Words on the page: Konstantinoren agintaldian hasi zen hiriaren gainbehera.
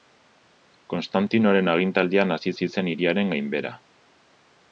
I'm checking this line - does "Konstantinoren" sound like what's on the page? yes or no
yes